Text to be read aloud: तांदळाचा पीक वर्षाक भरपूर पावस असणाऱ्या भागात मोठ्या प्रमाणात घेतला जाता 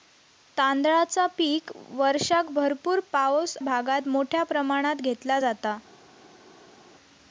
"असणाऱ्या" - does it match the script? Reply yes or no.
no